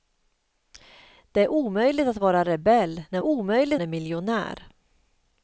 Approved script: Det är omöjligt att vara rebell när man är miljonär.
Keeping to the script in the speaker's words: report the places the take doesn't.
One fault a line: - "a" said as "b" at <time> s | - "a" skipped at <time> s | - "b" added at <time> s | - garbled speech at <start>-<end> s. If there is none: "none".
- "man" said as "omöjligt" at 3.2 s